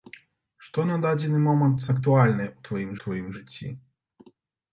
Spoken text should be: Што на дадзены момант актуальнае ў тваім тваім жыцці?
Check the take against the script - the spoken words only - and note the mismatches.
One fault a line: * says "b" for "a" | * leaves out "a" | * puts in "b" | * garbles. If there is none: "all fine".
all fine